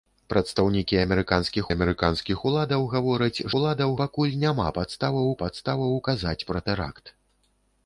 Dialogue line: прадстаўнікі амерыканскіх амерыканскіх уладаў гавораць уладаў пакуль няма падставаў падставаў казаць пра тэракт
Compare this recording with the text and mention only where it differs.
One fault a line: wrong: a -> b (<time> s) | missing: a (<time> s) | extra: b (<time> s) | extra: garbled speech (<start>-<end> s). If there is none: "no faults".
no faults